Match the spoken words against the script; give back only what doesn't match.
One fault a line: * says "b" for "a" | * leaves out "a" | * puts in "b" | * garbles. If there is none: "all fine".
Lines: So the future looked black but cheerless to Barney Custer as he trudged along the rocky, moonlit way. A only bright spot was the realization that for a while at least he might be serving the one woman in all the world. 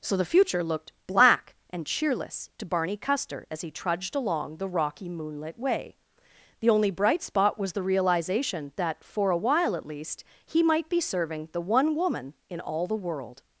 * says "and" for "but"
* says "The" for "A"